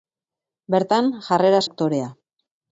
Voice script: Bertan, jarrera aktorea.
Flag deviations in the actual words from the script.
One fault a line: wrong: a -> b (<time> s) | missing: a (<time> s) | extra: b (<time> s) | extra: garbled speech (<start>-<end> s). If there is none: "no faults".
no faults